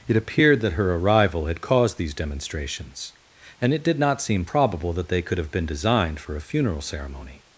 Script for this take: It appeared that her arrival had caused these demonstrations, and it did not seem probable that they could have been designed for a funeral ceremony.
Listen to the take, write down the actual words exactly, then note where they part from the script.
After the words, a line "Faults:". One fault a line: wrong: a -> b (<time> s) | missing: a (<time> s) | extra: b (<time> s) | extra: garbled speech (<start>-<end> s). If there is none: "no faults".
It appeared that her arrival had caused these demonstrations, and it did not seem probable that they could have been designed for a funeral ceremony.
Faults:
no faults